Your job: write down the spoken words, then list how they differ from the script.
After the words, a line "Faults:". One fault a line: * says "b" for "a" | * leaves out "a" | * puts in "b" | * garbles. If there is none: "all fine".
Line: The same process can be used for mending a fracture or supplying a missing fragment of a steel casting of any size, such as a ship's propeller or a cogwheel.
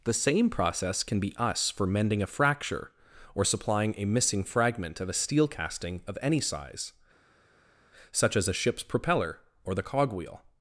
The same process can be us for mending a fracture or supplying a missing fragment of a steel casting of any size, such as a ship's propeller or the cogwheel.
Faults:
* says "us" for "used"
* says "the" for "a"